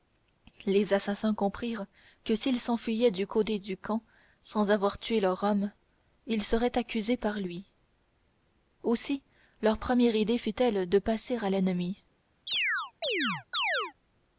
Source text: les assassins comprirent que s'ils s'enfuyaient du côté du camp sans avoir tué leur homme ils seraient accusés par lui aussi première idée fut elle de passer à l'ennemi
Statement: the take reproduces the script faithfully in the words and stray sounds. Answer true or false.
false